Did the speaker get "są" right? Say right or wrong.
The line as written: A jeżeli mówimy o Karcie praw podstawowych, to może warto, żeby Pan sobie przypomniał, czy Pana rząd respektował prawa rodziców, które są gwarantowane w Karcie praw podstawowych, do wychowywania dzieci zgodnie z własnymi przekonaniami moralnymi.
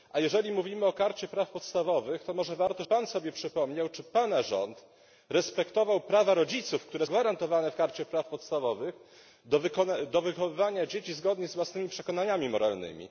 wrong